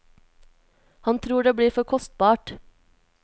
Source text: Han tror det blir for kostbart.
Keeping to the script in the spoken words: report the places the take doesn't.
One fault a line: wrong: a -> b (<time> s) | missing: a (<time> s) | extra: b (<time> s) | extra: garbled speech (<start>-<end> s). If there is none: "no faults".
no faults